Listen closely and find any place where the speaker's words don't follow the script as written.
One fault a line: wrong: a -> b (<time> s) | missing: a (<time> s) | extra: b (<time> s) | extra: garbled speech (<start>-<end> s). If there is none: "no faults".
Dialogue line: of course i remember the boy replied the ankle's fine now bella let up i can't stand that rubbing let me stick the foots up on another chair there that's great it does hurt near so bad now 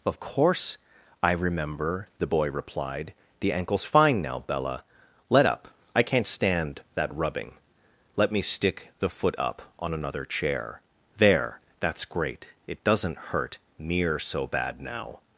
wrong: foots -> foot (9.1 s)
wrong: does -> doesn't (12.8 s)